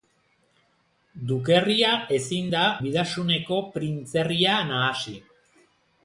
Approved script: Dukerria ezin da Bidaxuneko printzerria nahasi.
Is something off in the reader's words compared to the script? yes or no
no